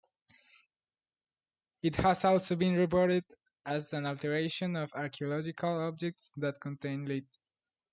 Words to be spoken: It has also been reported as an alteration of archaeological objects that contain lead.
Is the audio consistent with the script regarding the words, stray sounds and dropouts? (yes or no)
yes